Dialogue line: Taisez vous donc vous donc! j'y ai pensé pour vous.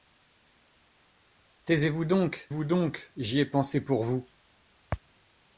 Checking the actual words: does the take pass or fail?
pass